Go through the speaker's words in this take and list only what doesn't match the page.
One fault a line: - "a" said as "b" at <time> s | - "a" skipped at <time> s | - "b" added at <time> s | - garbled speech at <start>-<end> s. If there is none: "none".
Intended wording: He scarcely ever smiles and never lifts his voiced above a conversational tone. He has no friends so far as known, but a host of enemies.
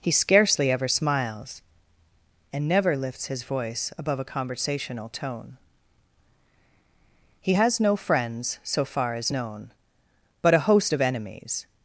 - "voiced" said as "voice" at 3.4 s